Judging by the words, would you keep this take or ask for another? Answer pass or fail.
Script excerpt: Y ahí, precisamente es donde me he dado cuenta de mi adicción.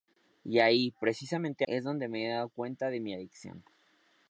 pass